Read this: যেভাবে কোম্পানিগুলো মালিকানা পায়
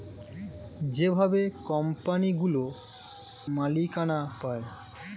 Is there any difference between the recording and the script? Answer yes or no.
no